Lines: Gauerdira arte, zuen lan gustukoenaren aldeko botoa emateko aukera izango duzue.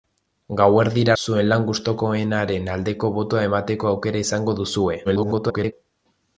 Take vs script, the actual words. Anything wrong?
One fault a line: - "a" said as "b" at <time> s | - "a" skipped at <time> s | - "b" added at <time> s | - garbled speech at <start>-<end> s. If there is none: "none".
- "arte" skipped at 1.1 s
- garbled speech at 5.0-5.7 s